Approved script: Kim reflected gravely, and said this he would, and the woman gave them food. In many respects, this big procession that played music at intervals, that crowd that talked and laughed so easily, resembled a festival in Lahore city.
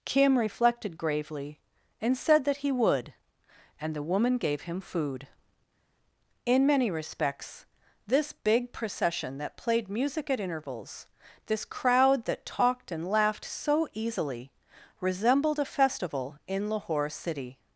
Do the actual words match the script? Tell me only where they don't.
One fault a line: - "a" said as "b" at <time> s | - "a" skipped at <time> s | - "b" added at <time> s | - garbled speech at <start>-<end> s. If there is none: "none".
- "this" said as "that" at 2.5 s
- "them" said as "him" at 4.6 s
- "that" said as "this" at 11.5 s